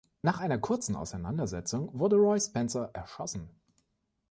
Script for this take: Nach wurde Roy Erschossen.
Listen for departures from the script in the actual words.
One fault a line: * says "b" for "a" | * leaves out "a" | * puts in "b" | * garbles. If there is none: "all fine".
* puts in "einer kurzen Auseinandersetzung"
* puts in "Spencer"